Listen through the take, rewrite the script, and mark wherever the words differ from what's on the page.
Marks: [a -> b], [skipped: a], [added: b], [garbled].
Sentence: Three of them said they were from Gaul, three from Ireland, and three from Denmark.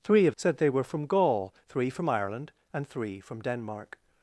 Three of [skipped: them] said they were from Gaul, three from Ireland, and three from Denmark.